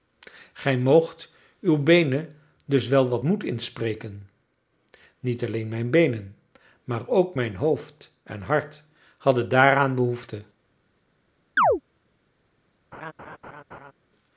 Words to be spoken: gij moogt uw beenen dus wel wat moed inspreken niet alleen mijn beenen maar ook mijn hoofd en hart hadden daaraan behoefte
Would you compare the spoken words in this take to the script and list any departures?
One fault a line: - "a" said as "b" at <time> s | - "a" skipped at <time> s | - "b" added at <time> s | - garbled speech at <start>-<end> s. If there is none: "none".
none